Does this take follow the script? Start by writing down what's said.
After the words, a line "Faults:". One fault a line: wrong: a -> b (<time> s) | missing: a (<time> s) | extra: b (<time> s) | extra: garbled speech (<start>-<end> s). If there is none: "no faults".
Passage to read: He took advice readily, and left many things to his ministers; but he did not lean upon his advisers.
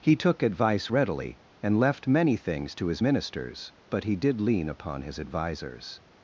He took advice readily, and left many things to his ministers; but he did lean upon his advisers.
Faults:
missing: not (4.4 s)